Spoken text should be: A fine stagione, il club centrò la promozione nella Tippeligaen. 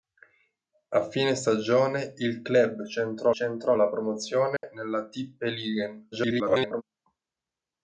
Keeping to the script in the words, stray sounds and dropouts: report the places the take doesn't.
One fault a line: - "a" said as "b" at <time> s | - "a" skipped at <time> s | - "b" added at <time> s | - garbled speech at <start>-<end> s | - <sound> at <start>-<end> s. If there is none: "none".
- "centrò" added at 3.3 s
- dropout at 4.6-4.6 s
- garbled speech at 6.1-6.8 s